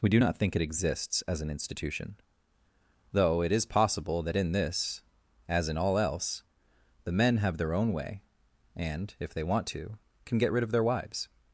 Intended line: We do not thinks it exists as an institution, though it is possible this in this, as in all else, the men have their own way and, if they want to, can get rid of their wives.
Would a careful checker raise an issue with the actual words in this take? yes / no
yes